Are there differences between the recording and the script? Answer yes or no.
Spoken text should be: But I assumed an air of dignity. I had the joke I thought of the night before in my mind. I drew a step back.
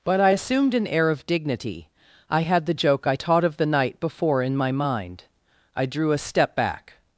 yes